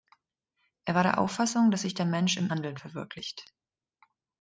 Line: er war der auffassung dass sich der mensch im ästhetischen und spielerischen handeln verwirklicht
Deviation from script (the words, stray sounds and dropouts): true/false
true